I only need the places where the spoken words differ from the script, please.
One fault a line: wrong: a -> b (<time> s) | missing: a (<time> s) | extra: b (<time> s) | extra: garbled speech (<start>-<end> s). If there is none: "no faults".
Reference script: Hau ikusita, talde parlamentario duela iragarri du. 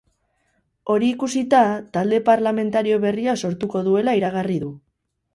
wrong: Hau -> Hori (0.9 s)
extra: berria sortuko (3.0 s)